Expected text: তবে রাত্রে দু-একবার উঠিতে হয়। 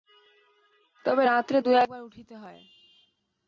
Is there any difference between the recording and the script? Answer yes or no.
no